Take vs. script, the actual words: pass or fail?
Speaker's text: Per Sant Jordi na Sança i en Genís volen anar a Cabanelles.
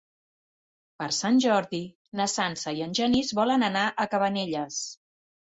pass